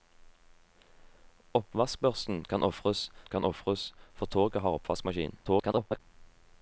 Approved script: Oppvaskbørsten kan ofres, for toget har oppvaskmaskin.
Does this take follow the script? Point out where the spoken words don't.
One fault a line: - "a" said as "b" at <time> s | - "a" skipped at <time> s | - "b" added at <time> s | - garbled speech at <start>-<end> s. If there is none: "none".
- "kan ofres" added at 3.2 s
- garbled speech at 5.4-6.0 s